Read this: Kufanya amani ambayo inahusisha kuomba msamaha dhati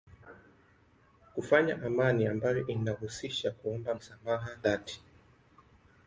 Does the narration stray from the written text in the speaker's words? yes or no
no